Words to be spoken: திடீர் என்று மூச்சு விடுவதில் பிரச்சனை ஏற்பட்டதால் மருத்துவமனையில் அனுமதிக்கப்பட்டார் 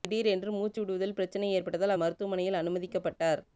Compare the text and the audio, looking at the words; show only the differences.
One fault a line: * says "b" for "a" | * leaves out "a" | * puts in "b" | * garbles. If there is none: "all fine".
all fine